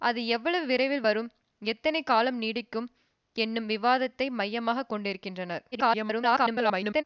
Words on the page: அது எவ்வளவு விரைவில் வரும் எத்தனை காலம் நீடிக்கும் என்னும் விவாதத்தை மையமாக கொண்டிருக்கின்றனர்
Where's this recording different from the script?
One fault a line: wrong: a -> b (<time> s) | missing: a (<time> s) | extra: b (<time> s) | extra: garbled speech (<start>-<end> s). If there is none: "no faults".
extra: garbled speech (5.7-7.0 s)